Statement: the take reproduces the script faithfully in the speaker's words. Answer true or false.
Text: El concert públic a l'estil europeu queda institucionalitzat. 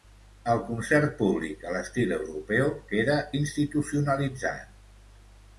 true